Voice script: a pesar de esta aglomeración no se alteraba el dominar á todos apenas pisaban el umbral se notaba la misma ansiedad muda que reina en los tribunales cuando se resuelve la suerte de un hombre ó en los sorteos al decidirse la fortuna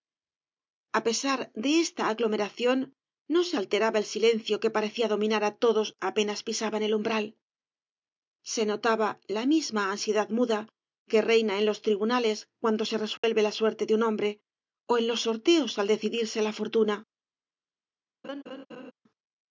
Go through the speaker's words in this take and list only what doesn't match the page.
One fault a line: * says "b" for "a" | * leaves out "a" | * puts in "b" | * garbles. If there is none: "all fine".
* puts in "silencio que parecía"